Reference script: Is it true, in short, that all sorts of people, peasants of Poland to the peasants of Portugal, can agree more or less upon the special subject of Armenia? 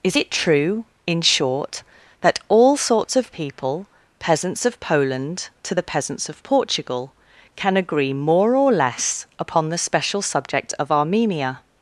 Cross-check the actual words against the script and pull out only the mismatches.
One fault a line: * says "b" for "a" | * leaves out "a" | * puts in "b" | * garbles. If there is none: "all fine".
all fine